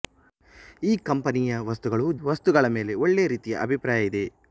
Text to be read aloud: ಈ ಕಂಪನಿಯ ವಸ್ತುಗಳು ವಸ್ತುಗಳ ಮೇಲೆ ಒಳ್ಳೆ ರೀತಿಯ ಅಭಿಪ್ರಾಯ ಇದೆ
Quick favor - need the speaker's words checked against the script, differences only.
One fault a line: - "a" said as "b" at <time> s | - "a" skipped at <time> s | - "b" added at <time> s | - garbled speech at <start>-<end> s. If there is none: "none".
none